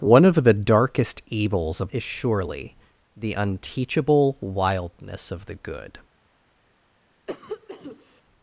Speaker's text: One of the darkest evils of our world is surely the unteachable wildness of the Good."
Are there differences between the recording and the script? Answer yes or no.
yes